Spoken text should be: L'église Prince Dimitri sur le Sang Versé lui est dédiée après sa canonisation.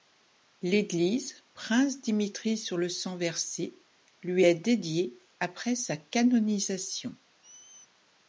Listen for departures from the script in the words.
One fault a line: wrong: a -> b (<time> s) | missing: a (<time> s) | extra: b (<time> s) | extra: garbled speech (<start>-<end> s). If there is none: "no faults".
no faults